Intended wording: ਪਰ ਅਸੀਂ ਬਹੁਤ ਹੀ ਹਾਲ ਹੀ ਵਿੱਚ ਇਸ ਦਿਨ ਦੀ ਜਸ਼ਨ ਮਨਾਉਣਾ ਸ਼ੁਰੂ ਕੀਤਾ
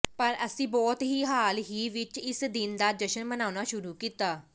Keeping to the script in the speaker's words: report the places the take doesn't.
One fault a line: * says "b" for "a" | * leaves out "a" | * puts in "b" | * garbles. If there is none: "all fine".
* says "ਦਾ" for "ਦੀ"